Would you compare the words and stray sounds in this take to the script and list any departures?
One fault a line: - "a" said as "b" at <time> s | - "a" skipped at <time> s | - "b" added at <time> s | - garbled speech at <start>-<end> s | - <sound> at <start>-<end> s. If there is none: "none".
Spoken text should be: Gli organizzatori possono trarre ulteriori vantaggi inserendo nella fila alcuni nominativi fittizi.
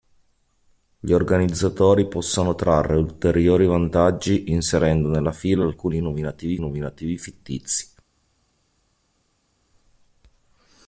- "nominativi" added at 6.6 s